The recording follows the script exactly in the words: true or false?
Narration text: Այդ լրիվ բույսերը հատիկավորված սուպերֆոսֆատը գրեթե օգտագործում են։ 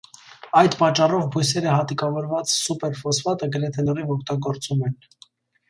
false